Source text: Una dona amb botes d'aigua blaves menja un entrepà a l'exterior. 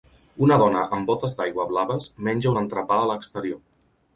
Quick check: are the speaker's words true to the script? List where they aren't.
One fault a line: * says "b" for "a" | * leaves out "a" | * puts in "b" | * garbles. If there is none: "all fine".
all fine